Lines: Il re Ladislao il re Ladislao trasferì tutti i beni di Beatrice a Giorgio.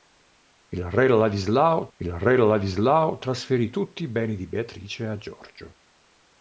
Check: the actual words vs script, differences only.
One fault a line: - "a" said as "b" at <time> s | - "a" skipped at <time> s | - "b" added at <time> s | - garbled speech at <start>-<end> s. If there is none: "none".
none